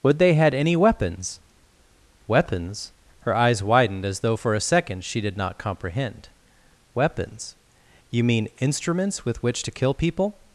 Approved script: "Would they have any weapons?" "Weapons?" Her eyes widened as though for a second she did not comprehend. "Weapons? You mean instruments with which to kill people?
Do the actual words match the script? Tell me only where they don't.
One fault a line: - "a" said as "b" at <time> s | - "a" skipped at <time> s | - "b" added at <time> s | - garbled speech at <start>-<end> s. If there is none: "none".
- "have" said as "had" at 0.3 s